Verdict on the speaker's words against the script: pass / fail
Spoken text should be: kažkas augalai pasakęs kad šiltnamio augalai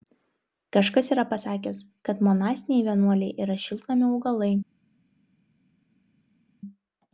fail